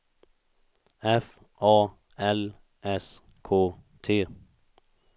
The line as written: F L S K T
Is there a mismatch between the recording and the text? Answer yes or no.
yes